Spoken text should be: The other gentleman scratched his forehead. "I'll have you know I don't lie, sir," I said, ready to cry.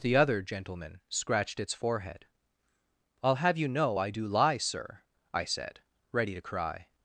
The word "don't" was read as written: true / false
false